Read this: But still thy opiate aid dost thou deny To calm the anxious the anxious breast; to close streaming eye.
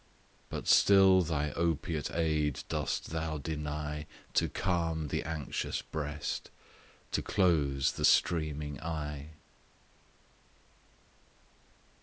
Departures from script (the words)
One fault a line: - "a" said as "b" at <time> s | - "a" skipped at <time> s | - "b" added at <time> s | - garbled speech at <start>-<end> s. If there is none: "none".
- "the anxious" skipped at 5.8 s
- "the" added at 7.9 s